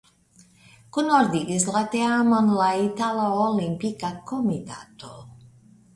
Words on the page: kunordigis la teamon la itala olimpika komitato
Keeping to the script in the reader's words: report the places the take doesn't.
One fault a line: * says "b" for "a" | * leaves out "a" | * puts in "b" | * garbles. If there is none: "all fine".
all fine